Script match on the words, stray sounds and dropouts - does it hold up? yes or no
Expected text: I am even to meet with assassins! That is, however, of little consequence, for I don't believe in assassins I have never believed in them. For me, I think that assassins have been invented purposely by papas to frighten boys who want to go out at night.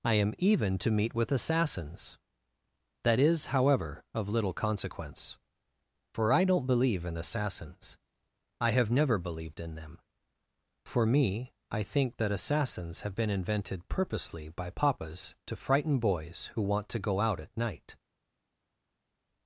yes